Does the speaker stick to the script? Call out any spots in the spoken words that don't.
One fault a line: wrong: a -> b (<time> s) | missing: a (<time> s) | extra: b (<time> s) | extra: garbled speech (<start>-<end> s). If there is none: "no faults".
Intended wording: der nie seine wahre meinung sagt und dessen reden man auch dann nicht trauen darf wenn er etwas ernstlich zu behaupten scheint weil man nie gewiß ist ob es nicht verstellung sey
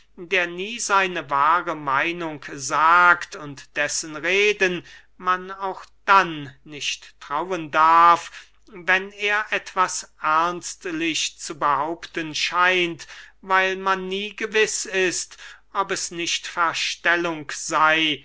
no faults